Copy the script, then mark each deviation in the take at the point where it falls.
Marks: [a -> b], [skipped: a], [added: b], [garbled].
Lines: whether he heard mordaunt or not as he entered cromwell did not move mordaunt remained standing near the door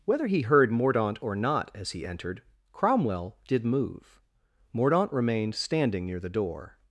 whether he heard mordaunt or not as he entered cromwell did [skipped: not] move mordaunt remained standing near the door